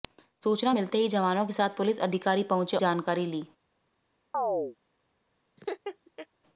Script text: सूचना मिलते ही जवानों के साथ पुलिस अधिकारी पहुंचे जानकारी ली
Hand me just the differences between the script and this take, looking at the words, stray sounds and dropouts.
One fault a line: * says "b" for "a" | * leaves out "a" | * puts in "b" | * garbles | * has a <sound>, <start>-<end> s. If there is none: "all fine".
* has a chirp, 4.3-4.8 s
* has a laugh, 5.6-6.3 s